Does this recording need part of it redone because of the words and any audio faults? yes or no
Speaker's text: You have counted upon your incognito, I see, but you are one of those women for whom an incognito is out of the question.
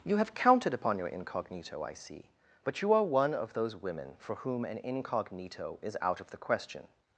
no